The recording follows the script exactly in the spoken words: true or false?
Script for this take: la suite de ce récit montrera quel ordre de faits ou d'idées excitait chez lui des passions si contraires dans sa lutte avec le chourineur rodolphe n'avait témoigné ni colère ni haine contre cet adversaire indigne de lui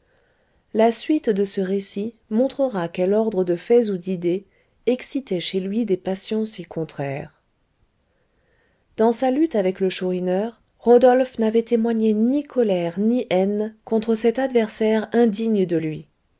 true